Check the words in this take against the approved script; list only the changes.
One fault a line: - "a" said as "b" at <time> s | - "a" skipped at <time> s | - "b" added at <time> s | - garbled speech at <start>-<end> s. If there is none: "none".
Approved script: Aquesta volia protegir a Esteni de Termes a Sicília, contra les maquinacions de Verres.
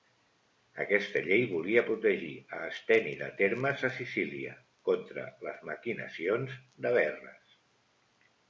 - "llei" added at 1.3 s